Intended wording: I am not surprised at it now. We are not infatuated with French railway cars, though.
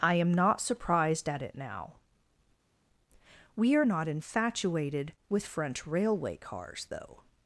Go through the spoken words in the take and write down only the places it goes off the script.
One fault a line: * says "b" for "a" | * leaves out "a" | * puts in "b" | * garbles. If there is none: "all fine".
all fine